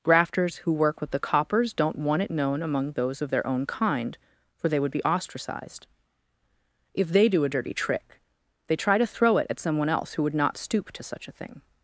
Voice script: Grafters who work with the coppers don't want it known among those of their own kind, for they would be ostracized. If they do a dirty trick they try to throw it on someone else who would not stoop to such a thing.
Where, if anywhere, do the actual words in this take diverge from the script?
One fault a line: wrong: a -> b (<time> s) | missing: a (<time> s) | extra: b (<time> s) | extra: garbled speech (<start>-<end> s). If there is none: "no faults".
wrong: on -> at (9.5 s)